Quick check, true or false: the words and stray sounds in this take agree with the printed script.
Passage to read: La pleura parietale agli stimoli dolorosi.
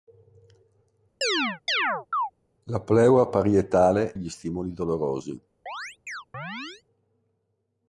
false